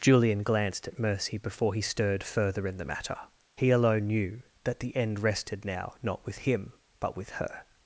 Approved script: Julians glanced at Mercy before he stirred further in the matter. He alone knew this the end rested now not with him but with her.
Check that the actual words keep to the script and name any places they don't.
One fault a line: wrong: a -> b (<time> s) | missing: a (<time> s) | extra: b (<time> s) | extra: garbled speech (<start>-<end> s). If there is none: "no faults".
wrong: Julians -> Julian (0.0 s)
wrong: this -> that (4.6 s)